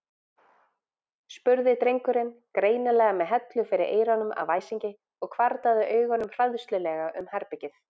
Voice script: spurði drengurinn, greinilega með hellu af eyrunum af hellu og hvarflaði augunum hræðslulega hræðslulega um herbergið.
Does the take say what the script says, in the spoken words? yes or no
no